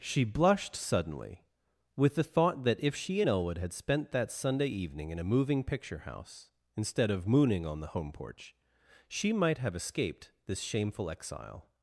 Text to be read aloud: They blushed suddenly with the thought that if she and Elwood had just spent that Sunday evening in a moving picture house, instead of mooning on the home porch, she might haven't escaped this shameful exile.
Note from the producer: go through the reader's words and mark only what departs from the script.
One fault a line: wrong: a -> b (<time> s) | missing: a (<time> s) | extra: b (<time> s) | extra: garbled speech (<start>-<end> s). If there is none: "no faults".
wrong: They -> She (0.0 s)
missing: just (3.7 s)
wrong: haven't -> have (9.6 s)